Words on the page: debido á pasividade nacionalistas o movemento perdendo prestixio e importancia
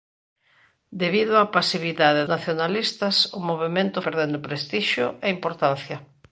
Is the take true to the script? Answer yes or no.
yes